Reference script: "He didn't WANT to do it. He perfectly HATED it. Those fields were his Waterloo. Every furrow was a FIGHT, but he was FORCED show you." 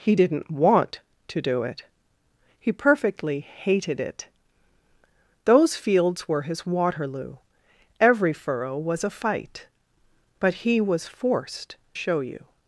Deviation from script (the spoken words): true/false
false